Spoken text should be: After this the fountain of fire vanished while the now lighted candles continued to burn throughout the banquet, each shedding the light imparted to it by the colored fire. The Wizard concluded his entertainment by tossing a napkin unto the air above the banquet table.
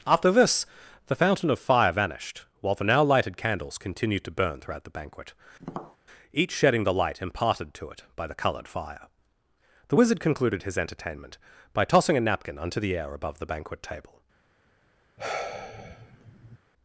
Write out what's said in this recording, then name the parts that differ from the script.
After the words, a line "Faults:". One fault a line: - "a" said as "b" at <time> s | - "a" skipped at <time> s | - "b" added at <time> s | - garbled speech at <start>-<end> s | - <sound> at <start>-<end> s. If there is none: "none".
After this the fountain of fire vanished while the now lighted candles continued to burn throughout the banquet, each shedding the light imparted to it by the colored fire. The Wizard concluded his entertainment by tossing a napkin unto the air above the banquet table.
Faults:
- tap at 5.6-6.0 s
- sigh at 15.2-16.6 s